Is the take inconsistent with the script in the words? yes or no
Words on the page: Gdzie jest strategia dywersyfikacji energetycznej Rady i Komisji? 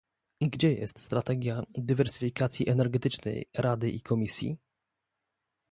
no